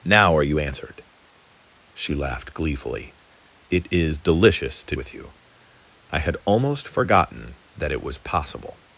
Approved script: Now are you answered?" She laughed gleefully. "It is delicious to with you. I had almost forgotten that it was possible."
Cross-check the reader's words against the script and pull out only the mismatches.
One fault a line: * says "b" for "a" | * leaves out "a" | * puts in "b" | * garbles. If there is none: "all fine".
all fine